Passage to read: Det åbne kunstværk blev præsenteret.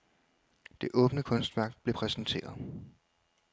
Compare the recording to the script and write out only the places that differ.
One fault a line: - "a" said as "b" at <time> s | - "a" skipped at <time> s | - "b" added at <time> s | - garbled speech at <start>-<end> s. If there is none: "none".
none